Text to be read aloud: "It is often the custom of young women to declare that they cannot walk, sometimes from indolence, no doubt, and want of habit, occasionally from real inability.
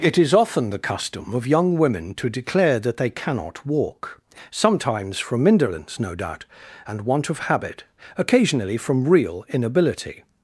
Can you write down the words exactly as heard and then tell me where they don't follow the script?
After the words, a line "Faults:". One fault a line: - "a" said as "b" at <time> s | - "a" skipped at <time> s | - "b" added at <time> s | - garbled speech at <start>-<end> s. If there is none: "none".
"It is often the custom of young women to declare that they cannot walk, sometimes from indolence, no doubt, and want of habit, occasionally from real inability.
Faults:
none